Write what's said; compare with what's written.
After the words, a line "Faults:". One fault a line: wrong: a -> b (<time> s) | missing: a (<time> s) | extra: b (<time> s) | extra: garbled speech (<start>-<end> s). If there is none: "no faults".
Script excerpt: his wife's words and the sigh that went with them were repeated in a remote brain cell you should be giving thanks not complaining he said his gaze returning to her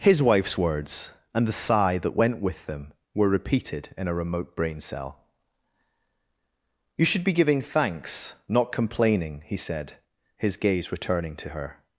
his wife's words and the sigh that went with them were repeated in a remote brain cell you should be giving thanks not complaining he said his gaze returning to her
Faults:
no faults